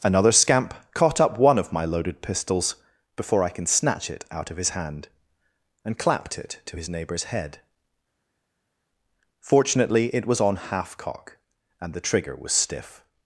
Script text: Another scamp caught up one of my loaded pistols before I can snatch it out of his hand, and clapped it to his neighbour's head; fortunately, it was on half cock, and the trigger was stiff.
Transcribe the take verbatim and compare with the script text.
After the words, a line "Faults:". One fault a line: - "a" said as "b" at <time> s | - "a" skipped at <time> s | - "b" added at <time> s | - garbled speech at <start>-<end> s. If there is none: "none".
Another scamp caught up one of my loaded pistols before I can snatch it out of his hand, and clapped it to his neighbour's head; fortunately, it was on half cock, and the trigger was stiff.
Faults:
none